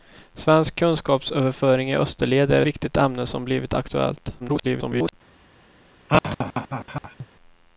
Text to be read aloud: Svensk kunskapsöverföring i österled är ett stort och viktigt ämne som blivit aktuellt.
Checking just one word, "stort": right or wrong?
wrong